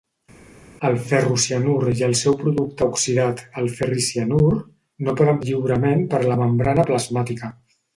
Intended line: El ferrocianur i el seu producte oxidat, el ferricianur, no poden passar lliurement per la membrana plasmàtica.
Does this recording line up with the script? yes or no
no